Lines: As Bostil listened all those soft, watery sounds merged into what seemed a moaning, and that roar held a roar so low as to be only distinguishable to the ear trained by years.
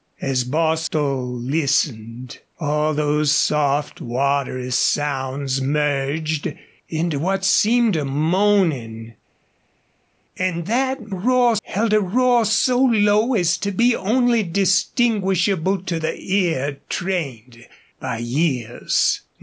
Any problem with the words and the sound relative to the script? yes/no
no